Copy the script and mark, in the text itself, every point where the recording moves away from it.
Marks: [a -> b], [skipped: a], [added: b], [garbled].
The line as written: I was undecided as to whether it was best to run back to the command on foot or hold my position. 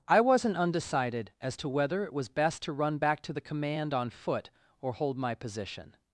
I [was -> wasn't] undecided as to whether it was best to run back to the command on foot or hold my position.